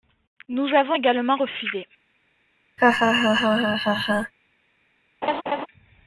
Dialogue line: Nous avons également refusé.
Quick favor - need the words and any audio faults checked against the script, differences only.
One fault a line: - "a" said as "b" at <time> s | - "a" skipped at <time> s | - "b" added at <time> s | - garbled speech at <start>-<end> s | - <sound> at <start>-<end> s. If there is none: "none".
- laugh at 2.8-4.3 s
- laugh at 5.2-5.7 s